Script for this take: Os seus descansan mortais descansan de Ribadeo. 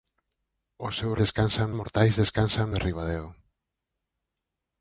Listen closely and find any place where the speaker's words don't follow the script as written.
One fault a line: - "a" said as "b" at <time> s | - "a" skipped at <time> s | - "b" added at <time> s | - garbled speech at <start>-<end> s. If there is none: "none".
none